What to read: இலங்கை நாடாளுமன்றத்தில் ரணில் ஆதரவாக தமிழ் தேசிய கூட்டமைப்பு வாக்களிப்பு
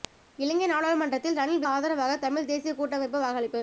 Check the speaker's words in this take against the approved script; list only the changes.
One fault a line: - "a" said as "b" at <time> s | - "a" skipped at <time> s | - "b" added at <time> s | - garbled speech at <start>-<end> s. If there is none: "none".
none